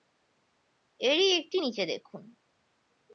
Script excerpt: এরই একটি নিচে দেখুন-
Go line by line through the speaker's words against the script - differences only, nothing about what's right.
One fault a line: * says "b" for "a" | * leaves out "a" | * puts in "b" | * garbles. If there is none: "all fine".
all fine